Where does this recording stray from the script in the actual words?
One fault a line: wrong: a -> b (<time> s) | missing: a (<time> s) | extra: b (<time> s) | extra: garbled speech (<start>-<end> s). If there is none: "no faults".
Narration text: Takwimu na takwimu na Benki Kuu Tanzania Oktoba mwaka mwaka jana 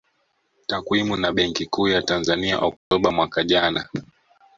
missing: takwimu na (1.3 s)
extra: ya (1.9 s)
missing: mwaka (3.4 s)